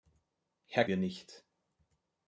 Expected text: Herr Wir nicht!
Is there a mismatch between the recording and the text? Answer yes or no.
no